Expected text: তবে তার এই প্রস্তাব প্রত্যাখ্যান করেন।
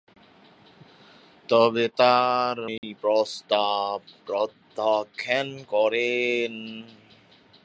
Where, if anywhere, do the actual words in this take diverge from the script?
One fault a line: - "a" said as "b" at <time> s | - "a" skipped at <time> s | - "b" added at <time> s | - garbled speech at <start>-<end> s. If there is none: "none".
none